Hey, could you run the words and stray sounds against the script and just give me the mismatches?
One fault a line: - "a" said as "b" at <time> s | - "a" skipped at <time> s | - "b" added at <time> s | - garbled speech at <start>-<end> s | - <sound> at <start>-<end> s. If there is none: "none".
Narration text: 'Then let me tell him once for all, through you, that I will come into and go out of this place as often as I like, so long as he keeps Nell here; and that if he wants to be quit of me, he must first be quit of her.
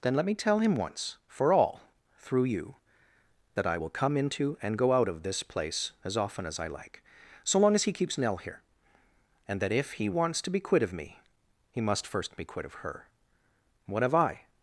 - "What have I" added at 13.9 s